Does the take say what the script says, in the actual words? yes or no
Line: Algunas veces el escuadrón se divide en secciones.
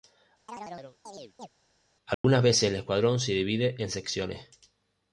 yes